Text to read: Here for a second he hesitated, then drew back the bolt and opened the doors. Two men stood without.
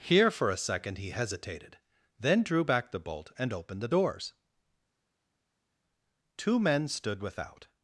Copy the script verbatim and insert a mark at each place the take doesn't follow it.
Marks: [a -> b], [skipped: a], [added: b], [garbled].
Here for a second he hesitated, then drew back the bolt and opened the doors. Two men stood without.